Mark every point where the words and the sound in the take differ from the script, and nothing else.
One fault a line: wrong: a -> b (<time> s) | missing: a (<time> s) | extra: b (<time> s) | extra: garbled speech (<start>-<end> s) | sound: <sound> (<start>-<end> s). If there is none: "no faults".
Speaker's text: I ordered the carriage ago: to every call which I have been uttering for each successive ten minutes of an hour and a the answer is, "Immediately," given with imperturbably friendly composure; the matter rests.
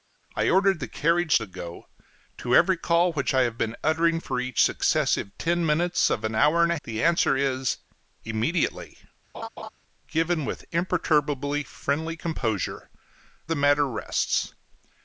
sound: laugh (9.3-9.7 s)